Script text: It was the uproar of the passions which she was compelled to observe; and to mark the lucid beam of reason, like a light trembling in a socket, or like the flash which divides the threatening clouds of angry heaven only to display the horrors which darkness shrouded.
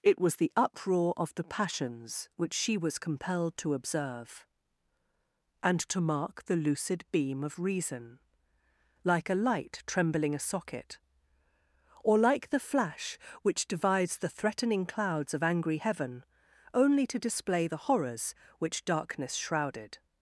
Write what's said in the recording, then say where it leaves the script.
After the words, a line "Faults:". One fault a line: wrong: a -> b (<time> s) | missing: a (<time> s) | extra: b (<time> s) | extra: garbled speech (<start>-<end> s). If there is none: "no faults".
It was the uproar of the passions which she was compelled to observe; and to mark the lucid beam of reason, like a light trembling a socket, or like the flash which divides the threatening clouds of angry heaven only to display the horrors which darkness shrouded.
Faults:
missing: in (10.3 s)